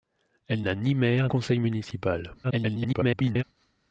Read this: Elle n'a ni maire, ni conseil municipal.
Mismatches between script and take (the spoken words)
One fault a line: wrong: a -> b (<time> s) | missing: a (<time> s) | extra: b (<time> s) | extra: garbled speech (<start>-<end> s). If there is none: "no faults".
missing: ni (1.3 s)
extra: garbled speech (2.4-3.4 s)